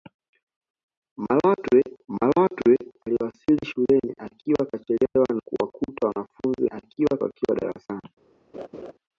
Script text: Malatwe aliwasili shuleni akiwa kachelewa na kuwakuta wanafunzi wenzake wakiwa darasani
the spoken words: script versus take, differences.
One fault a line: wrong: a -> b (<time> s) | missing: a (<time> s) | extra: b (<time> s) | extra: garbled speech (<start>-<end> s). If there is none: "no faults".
extra: malatwe (2.1 s)
missing: na (5.3 s)
wrong: wenzake -> akiwa (6.7 s)